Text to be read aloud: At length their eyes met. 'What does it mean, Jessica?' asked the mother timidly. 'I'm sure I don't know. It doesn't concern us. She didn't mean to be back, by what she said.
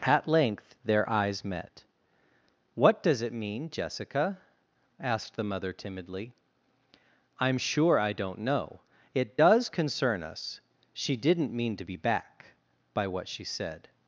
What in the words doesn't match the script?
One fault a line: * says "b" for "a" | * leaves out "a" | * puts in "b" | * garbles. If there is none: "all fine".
* says "does" for "doesn't"